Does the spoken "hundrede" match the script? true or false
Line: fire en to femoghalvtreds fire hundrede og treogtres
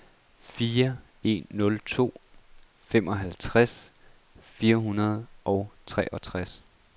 true